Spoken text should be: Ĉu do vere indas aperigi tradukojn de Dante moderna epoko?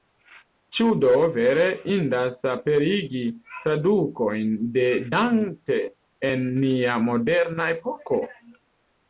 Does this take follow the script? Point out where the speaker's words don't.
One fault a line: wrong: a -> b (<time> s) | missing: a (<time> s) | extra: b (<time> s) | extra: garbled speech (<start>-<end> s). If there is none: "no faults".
extra: en nia (6.3 s)